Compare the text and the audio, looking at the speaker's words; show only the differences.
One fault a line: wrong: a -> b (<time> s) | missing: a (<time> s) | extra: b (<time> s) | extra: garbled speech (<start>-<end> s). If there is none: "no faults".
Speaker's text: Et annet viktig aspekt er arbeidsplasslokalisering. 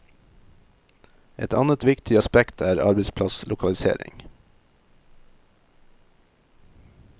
no faults